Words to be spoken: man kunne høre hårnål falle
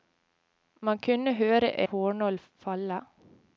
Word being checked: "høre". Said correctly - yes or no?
yes